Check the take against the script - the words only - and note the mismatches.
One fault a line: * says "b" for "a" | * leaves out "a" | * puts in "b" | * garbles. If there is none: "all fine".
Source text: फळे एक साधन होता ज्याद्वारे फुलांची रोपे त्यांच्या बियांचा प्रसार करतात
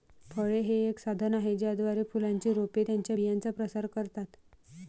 * puts in "हे"
* says "आहे" for "होता"